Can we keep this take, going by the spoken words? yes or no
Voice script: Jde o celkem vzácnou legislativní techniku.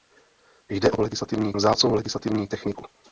no